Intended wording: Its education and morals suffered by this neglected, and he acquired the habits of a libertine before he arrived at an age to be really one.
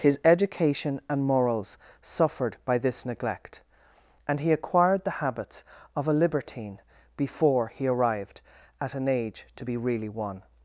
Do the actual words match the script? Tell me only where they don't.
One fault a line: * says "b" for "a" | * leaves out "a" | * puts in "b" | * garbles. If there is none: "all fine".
* says "His" for "Its"
* says "neglect" for "neglected"